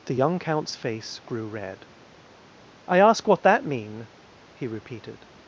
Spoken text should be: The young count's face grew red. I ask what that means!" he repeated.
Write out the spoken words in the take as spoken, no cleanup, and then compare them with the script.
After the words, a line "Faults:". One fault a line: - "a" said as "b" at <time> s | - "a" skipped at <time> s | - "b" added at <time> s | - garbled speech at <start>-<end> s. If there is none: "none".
The young count's face grew red. I ask what that mean!" he repeated.
Faults:
- "means" said as "mean" at 3.6 s